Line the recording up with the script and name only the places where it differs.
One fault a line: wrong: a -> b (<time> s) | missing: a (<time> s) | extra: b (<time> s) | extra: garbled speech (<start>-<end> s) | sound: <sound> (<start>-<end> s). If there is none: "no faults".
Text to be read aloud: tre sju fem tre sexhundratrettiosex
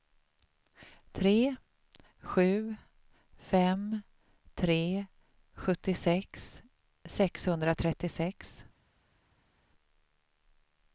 extra: sjuttiosex (5.6 s)